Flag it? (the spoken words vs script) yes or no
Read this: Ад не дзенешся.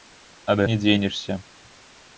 no